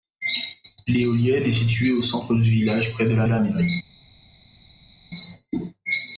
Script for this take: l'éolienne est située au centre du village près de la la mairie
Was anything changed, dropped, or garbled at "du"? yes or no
no